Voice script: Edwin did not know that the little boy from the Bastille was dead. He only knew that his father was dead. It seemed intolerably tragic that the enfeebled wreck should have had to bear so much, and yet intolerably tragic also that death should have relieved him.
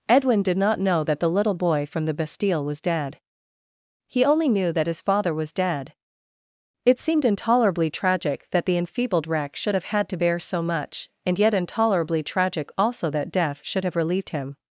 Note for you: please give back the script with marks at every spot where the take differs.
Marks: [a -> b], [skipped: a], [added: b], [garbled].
Edwin did not know that the little boy from the Bastille was dead. He only knew that his father was dead. It seemed intolerably tragic that the enfeebled wreck should have had to bear so much, and yet intolerably tragic also that death should have relieved him.